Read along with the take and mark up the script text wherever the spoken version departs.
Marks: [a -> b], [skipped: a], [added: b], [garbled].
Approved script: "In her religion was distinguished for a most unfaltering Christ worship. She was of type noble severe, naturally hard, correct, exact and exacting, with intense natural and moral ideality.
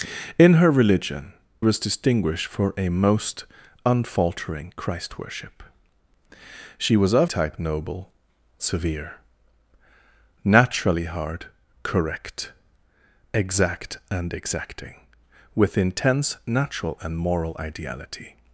"In her religion was distinguished for a most unfaltering Christ worship. She was of type noble severe, naturally hard, correct, exact and exacting, with intense natural and moral ideality.